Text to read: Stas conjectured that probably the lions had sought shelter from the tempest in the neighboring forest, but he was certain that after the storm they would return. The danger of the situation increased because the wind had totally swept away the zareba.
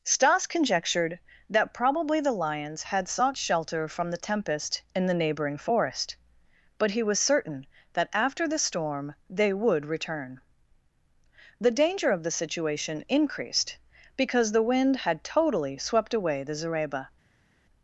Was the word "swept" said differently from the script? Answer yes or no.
no